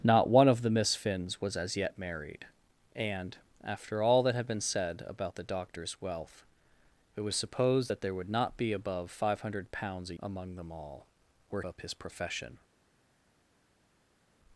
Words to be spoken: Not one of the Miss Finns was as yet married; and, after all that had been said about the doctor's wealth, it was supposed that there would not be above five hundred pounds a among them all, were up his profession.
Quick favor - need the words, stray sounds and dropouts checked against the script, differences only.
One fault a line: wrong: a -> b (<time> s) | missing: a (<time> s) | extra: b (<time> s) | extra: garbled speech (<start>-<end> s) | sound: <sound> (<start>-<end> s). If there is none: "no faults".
no faults